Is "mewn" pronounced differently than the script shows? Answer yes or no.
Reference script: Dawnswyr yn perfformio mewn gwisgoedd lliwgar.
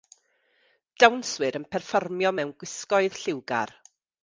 no